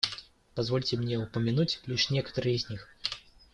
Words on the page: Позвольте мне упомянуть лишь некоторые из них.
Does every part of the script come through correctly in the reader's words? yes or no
yes